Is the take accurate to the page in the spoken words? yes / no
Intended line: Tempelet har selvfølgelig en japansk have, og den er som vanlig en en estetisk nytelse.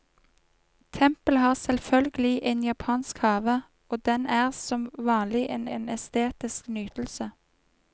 yes